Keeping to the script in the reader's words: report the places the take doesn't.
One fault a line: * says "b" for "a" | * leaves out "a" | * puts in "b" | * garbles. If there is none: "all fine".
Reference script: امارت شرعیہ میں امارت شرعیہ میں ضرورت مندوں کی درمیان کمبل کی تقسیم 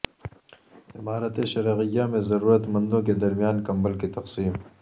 * leaves out "امارت شرعیہ میں"
* says "کے" for "کی"